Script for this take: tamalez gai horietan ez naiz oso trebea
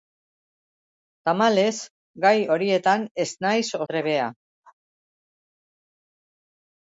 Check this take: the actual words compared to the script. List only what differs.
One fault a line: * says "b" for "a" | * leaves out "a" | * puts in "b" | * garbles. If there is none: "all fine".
* leaves out "oso"